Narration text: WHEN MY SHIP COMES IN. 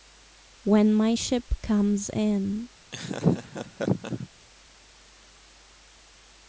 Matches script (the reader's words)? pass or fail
pass